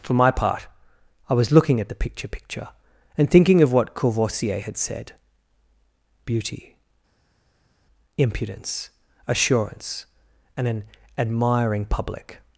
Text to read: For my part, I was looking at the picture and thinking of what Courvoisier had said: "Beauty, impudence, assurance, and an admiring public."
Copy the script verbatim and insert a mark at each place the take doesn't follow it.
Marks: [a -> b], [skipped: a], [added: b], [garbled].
For my part, I was looking at the picture [added: picture] and thinking of what Courvoisier had said: "Beauty, impudence, assurance, and an admiring public."